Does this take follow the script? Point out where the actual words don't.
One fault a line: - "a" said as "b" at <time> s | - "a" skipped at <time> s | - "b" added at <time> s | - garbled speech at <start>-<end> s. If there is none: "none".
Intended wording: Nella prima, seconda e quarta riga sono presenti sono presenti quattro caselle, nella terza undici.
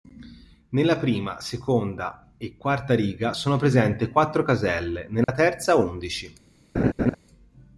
- "sono presenti" skipped at 4.1 s